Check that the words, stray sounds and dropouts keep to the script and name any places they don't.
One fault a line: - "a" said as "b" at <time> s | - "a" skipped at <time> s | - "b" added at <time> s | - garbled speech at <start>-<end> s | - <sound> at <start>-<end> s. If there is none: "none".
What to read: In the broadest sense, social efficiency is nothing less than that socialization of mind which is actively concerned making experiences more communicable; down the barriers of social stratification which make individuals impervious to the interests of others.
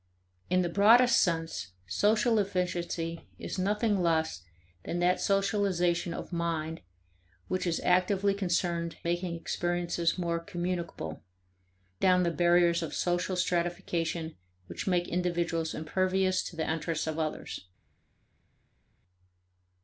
none